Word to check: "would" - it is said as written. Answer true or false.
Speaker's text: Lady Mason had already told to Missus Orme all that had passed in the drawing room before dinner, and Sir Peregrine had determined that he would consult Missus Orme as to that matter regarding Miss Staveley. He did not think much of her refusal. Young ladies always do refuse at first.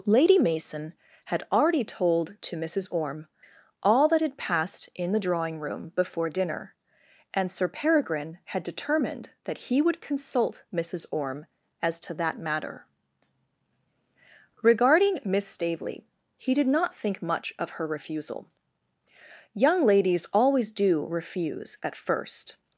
true